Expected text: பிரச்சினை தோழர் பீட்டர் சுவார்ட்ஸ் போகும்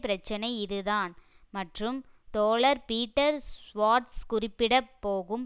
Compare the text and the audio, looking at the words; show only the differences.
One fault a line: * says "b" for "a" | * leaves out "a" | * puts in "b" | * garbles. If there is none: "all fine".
* puts in "இதுதான் மற்றும்"
* puts in "குறிப்பிட"